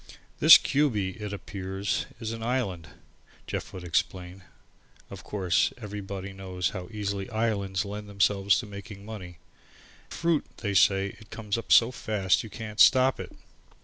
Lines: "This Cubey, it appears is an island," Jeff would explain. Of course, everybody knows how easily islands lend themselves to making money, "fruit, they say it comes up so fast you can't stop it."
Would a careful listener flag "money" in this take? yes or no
no